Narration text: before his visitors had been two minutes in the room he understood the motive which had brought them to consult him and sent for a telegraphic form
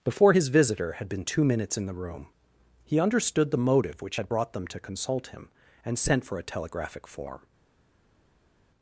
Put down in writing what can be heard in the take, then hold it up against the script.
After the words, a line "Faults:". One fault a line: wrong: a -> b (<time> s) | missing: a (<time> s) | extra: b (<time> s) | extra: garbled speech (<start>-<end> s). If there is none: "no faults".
before his visitor had been two minutes in the room he understood the motive which had brought them to consult him and sent for a telegraphic form
Faults:
wrong: visitors -> visitor (0.5 s)